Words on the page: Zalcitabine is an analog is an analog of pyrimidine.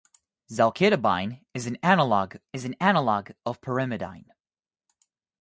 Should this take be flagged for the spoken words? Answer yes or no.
no